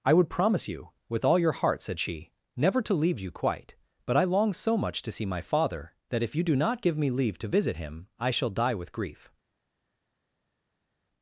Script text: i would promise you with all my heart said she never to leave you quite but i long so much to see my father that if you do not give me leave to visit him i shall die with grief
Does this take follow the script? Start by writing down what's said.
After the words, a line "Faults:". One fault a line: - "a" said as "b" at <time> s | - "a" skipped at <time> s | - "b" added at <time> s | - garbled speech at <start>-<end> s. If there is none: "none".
i would promise you with all your heart said she never to leave you quite but i long so much to see my father that if you do not give me leave to visit him i shall die with grief
Faults:
- "my" said as "your" at 1.4 s